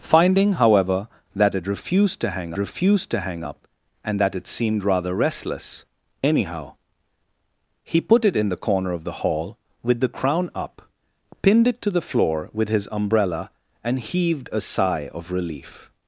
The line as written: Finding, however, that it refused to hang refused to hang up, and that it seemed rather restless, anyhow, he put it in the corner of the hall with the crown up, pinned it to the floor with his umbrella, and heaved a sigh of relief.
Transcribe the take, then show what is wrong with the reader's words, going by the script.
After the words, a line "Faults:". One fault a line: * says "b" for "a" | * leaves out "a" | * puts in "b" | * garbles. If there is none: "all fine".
Finding, however, that it refused to hang refused to hang up, and that it seemed rather restless, anyhow, he put it in the corner of the hall with the crown up, pinned it to the floor with his umbrella, and heaved a sigh of relief.
Faults:
all fine